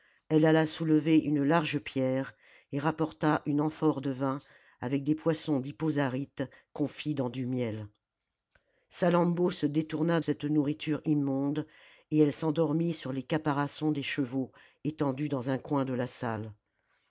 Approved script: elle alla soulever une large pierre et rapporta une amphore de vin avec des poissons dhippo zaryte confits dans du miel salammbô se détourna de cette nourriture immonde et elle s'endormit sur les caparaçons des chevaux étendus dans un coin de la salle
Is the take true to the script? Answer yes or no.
no